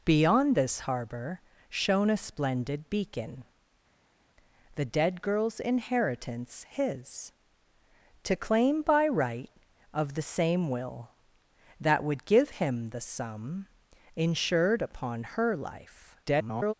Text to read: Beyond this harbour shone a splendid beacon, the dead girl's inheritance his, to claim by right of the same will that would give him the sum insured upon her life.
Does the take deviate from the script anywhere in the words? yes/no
yes